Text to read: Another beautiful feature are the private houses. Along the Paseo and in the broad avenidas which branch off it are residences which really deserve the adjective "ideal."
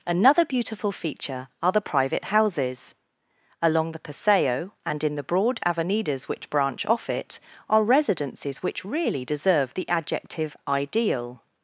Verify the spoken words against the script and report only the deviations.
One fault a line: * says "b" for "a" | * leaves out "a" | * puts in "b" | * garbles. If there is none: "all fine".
all fine